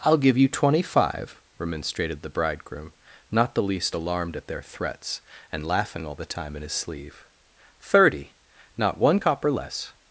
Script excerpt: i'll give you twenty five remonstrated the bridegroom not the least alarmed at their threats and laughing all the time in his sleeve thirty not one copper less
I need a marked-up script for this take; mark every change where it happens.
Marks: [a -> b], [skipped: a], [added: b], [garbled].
i'll give you twenty five remonstrated the bridegroom not the least alarmed at their threats and laughing all the time in his sleeve thirty not one copper less